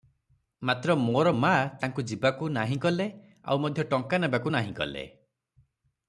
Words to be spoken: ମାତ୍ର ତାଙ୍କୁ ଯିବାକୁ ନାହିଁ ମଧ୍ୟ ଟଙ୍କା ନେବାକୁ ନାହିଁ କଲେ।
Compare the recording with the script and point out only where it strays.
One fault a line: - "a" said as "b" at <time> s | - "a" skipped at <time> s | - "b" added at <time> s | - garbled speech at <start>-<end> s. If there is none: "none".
- "ମୋର ମା" added at 0.9 s
- "କଲେ ଆଉ" added at 2.8 s